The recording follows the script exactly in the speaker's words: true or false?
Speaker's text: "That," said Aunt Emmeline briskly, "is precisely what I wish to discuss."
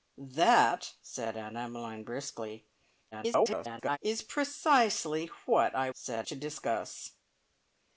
false